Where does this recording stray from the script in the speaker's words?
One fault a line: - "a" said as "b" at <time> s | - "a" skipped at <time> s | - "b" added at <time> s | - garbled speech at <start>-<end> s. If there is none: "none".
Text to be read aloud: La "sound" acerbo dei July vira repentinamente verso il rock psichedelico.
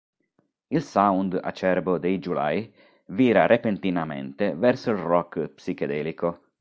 - "La" said as "Il" at 0.7 s